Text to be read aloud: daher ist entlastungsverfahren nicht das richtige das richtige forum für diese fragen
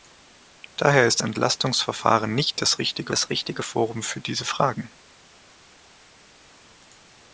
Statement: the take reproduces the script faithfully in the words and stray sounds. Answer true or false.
true